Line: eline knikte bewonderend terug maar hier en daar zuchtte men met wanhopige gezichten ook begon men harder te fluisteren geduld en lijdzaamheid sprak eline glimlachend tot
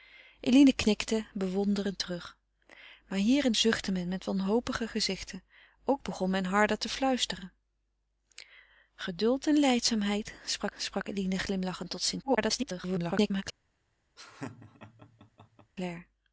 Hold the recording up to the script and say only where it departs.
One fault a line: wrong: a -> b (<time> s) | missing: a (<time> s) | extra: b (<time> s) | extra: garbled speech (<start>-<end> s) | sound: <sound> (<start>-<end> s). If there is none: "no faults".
missing: daar (3.5 s)
extra: sprak (10.8 s)
extra: garbled speech (12.2-13.4 s)
sound: laugh (14.2-15.7 s)